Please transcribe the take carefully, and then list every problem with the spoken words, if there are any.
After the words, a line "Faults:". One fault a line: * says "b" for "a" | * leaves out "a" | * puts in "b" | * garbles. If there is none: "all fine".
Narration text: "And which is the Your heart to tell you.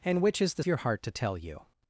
"And which is the Your heart to tell you.
Faults:
all fine